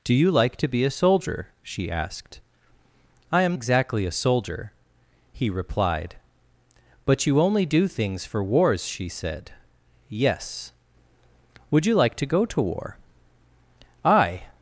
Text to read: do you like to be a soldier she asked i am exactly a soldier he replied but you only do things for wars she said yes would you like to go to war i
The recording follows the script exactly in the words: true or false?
true